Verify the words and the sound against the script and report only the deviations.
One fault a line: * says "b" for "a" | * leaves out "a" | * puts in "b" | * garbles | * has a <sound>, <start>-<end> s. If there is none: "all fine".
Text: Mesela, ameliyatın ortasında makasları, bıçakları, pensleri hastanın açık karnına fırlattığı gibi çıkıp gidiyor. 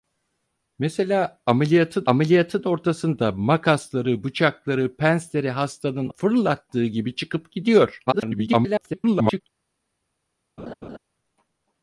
* puts in "ameliyatın"
* leaves out "açık karnına"
* garbles
* has a laugh, 10.6-11.0 s